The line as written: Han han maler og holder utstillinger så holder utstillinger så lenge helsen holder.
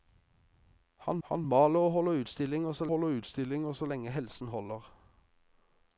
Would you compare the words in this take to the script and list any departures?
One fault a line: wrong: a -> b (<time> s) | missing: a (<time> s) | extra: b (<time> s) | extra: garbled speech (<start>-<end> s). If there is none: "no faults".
no faults